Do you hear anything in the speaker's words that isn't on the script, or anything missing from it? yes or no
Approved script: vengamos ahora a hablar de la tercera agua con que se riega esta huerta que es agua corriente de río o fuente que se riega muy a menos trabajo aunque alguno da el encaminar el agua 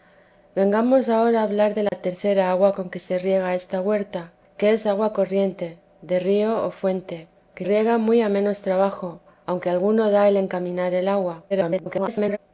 yes